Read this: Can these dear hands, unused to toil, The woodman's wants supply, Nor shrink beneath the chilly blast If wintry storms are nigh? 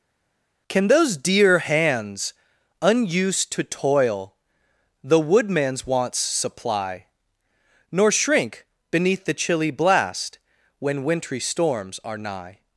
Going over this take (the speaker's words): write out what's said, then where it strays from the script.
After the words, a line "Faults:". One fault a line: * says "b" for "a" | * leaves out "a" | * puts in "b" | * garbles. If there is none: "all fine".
Can those dear hands, unused to toil, The woodman's wants supply, Nor shrink beneath the chilly blast When wintry storms are nigh?
Faults:
* says "those" for "these"
* says "When" for "If"